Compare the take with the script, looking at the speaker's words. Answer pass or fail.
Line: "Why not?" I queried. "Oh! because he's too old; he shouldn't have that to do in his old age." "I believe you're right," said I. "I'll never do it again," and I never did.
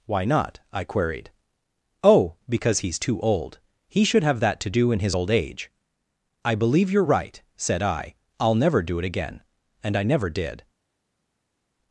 fail